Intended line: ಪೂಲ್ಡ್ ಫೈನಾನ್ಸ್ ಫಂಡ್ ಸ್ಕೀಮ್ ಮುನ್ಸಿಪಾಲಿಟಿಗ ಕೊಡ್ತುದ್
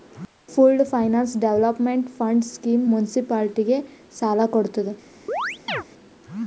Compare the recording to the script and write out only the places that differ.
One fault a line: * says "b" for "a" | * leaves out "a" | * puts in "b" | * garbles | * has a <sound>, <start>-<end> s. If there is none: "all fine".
* puts in "ಡೆವೆಲೊಪ್ಮೆಂಟ್"
* puts in "ಸಾಲ"
* has a chirp, 5.3-5.8 s